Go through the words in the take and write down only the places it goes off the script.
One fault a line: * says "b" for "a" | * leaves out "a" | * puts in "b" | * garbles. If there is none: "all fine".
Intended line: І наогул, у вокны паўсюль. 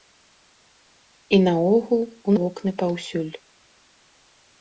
all fine